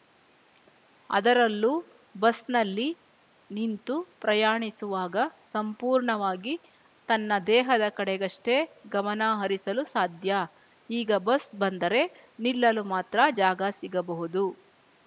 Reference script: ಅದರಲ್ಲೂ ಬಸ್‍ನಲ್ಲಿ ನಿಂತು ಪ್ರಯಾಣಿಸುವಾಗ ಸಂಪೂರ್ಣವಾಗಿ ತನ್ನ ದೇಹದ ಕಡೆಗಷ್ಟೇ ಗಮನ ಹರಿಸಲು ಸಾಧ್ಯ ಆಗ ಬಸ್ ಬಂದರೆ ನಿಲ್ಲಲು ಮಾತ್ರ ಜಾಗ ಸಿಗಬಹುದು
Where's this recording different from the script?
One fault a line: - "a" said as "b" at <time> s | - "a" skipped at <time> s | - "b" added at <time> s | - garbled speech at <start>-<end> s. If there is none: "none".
- "ಆಗ" said as "ಈಗ" at 10.9 s